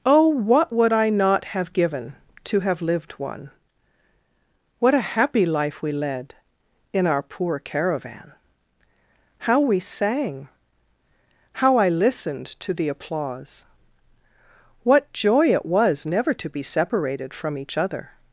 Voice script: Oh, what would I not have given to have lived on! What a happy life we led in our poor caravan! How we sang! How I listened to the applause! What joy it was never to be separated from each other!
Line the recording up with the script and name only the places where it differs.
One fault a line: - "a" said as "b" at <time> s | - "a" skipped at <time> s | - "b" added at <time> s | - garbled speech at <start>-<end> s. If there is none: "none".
- "on" said as "one" at 3.1 s